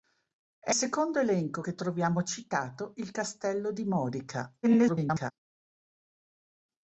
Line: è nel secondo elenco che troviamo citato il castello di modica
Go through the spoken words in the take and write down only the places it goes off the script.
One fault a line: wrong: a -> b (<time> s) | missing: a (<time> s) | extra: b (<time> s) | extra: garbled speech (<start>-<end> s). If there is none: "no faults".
missing: nel (0.8 s)
extra: garbled speech (4.6-5.3 s)